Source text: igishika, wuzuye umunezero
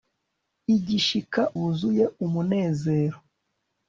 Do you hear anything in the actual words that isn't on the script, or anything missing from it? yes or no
no